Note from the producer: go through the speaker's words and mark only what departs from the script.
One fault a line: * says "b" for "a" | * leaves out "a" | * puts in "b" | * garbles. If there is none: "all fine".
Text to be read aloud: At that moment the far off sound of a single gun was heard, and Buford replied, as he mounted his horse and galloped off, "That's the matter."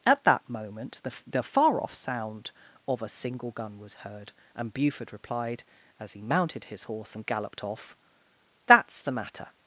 * puts in "the"